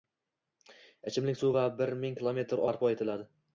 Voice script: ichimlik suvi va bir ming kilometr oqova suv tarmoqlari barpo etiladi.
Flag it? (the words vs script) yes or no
yes